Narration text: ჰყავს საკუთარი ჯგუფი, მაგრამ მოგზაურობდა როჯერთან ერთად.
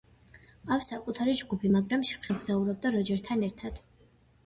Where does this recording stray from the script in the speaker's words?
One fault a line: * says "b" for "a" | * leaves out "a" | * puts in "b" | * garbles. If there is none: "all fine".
all fine